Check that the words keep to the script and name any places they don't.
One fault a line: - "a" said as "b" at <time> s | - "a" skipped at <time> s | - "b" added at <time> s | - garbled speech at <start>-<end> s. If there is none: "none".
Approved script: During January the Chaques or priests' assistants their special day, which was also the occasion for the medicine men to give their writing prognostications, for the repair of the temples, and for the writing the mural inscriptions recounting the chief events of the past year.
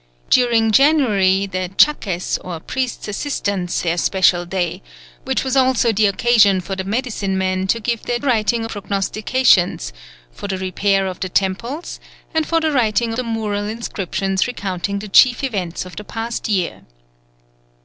none